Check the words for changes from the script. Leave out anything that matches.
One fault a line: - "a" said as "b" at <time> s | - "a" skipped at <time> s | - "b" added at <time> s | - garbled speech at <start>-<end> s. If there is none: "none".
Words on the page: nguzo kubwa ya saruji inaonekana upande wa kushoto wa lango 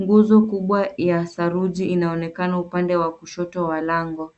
none